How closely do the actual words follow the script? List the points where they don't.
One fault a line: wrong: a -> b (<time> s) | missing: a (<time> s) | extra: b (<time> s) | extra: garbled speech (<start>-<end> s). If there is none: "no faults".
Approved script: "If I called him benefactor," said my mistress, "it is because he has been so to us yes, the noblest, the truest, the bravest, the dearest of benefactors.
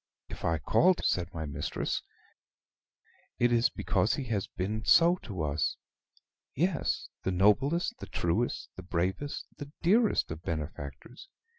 missing: him benefactor (1.0 s)